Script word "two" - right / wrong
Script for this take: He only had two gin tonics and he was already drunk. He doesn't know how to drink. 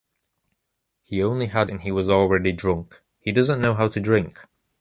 wrong